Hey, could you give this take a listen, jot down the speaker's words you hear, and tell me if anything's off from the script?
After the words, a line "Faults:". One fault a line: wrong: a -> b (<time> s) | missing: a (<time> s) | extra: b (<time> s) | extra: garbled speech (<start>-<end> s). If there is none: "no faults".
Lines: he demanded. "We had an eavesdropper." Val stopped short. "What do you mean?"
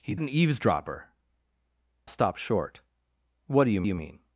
he an eavesdropper." Stopped short. "What do you you mean?"
Faults:
missing: demanded We had (0.1 s)
missing: Val (1.1 s)
extra: you (3.8 s)